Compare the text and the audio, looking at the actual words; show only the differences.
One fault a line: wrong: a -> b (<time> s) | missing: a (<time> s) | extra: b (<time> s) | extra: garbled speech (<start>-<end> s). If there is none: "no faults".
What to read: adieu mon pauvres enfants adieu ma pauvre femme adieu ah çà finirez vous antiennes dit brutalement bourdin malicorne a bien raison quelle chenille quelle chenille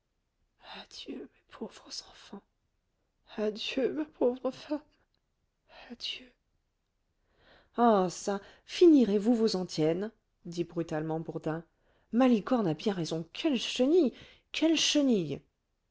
wrong: mon -> mes (1.2 s)
extra: vos (9.3 s)